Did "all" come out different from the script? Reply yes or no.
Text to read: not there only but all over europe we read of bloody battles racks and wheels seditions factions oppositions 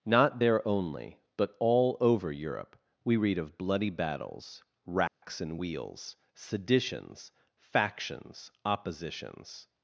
no